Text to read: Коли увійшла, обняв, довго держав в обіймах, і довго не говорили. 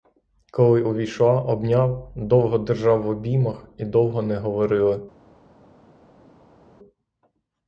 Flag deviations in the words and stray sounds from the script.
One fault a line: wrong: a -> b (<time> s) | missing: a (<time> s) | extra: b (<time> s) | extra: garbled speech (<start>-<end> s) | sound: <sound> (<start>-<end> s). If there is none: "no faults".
no faults